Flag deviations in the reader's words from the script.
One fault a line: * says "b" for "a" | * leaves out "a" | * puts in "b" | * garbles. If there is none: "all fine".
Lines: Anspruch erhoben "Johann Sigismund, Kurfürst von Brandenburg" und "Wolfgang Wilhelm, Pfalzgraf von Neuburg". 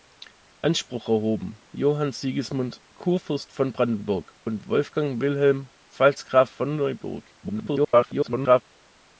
* garbles